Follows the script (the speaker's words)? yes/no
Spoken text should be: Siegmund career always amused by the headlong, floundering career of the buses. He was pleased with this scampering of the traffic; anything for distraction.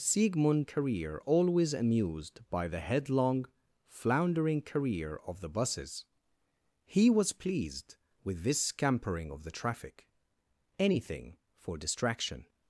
yes